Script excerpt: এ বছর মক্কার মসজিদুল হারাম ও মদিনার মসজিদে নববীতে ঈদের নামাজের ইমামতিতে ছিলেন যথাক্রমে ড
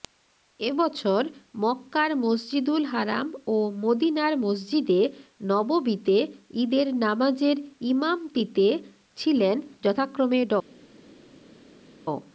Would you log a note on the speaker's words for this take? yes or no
no